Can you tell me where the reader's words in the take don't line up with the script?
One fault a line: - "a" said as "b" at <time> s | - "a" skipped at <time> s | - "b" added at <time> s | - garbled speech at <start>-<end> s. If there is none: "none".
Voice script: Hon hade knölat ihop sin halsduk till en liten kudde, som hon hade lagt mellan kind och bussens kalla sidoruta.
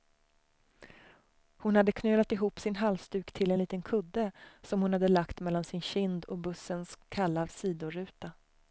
- "sin" added at 5.6 s